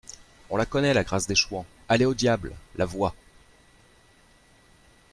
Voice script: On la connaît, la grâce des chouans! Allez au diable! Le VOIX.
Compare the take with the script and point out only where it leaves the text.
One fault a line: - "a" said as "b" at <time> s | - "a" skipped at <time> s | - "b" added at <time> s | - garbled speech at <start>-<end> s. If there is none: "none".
- "Le" said as "LA" at 2.8 s